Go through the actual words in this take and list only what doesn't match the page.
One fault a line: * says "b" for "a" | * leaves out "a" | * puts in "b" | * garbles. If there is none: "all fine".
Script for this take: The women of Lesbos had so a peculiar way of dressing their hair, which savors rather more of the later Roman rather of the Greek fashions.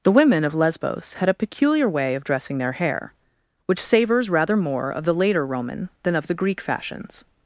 * leaves out "so"
* says "than" for "rather"